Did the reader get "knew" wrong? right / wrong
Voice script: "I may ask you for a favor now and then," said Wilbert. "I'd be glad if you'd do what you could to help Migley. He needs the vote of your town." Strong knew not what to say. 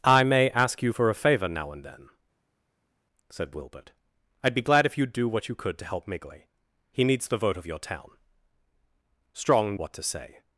wrong